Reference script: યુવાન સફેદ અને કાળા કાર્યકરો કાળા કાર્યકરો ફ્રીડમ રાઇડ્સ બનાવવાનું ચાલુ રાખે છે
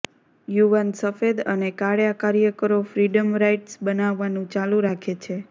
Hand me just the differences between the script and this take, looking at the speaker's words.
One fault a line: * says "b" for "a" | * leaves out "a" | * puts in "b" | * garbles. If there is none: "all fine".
* leaves out "કાળા કાર્યકરો"